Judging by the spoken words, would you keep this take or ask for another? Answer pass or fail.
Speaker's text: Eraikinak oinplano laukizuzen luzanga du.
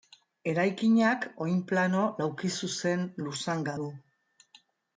pass